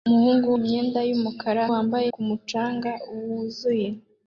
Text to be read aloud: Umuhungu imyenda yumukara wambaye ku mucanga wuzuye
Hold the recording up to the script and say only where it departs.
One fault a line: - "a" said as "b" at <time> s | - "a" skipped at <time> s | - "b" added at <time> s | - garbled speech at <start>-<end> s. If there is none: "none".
none